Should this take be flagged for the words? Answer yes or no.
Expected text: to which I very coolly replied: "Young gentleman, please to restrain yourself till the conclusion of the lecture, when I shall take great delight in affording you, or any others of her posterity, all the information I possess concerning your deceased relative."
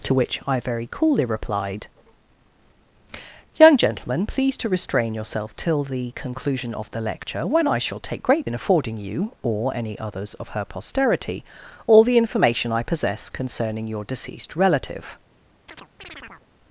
yes